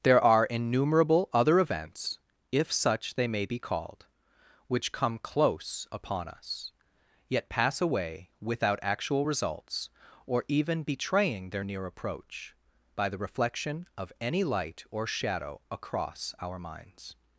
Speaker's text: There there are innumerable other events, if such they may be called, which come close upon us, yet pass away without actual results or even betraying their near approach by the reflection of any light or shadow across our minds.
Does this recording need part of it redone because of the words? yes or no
yes